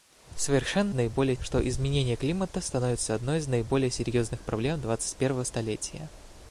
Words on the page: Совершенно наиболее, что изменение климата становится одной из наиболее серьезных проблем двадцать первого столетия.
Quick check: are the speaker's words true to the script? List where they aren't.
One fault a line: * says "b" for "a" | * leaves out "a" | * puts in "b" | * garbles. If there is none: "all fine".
all fine